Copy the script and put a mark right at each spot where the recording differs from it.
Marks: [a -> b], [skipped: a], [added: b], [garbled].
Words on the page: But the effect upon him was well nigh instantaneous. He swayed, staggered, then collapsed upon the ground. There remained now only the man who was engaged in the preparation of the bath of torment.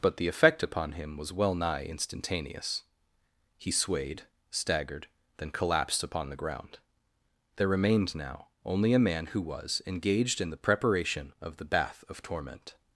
But the effect upon him was well nigh instantaneous. He swayed, staggered, then collapsed upon the ground. There remained now only [the -> a] man who was engaged in the preparation of the bath of torment.